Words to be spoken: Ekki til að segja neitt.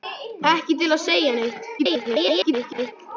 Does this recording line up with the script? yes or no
no